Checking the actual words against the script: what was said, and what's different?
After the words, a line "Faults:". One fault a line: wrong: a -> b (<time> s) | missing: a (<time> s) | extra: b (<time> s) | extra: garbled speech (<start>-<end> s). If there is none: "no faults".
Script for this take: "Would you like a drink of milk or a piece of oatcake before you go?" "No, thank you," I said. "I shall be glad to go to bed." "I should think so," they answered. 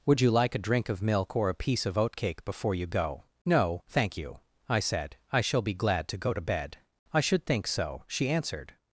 "Would you like a drink of milk or a piece of oatcake before you go?" "No, thank you," I said. "I shall be glad to go to bed." "I should think so," she answered.
Faults:
wrong: they -> she (8.1 s)